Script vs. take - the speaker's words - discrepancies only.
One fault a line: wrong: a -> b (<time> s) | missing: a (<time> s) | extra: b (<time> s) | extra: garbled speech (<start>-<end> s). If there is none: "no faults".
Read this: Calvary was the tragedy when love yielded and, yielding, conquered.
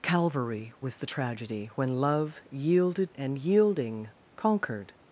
no faults